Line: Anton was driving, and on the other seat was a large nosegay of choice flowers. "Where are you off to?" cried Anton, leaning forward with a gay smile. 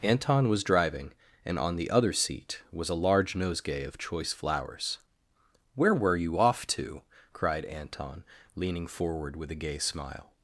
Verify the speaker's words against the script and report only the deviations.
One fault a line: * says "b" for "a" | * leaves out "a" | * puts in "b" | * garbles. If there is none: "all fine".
* says "were" for "are"